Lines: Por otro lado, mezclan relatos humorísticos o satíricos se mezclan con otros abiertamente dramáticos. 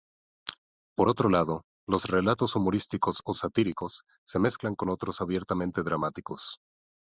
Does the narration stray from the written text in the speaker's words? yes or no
yes